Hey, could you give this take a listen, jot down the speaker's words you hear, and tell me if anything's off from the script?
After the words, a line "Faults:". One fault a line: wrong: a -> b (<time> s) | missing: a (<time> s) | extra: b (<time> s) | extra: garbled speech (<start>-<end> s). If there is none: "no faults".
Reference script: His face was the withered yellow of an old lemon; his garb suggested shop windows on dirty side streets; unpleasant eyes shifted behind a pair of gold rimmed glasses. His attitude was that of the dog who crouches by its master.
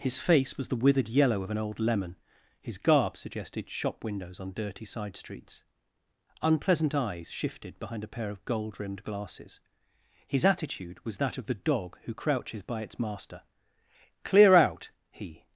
His face was the withered yellow of an old lemon; his garb suggested shop windows on dirty side streets; unpleasant eyes shifted behind a pair of gold rimmed glasses. His attitude was that of the dog who crouches by its master. "Clear out," he
Faults:
extra: Clear out he (14.2 s)